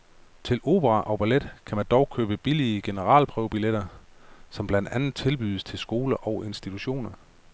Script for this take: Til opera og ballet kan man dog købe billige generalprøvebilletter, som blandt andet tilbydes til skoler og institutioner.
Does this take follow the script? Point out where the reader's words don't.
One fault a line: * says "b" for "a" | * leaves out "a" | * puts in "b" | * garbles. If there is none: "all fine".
all fine